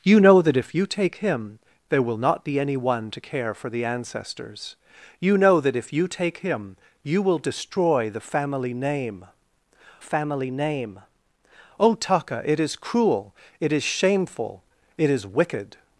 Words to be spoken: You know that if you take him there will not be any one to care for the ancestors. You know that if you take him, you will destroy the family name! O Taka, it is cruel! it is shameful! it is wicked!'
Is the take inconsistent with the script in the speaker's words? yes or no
yes